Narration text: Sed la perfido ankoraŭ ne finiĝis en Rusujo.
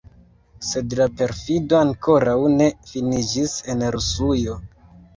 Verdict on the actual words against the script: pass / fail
pass